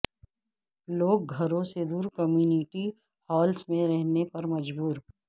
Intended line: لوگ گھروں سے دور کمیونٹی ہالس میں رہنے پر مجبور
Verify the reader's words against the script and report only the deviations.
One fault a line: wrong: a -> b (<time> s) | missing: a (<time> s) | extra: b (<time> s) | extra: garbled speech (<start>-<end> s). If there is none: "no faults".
no faults